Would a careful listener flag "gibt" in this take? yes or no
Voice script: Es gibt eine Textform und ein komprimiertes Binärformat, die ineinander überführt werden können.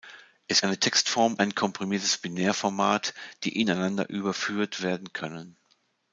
yes